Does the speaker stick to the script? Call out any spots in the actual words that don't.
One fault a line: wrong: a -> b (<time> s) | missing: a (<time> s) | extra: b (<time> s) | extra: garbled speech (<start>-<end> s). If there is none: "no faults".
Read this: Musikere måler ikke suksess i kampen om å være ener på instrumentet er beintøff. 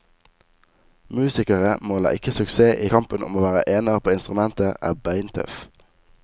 no faults